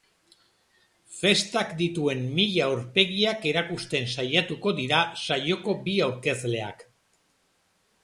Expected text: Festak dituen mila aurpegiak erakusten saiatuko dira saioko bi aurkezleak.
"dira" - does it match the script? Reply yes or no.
yes